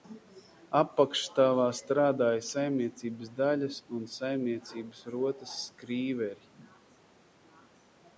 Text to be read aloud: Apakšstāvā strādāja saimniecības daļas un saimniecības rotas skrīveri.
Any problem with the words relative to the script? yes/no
no